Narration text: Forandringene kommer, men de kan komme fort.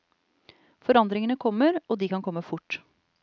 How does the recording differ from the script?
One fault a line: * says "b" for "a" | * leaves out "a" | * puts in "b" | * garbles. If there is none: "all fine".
* says "og" for "men"